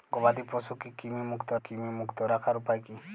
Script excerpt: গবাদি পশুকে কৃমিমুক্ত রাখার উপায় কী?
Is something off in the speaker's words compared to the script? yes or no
yes